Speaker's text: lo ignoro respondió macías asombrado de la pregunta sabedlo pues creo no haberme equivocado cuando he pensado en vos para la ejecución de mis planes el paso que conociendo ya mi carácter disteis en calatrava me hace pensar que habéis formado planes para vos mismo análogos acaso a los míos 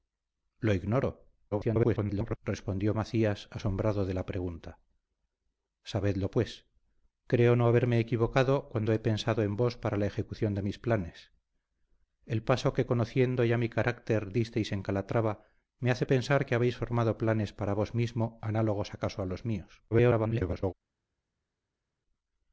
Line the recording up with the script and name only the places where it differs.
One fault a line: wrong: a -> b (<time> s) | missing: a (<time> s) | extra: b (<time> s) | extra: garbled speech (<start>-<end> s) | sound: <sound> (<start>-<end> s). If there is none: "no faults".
extra: garbled speech (1.5-2.4 s)
extra: garbled speech (19.9-20.7 s)